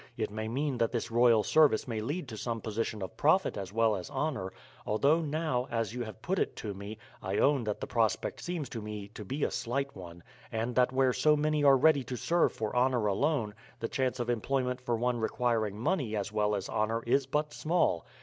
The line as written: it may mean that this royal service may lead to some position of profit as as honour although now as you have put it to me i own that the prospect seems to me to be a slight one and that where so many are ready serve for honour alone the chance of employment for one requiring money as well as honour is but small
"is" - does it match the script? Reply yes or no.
yes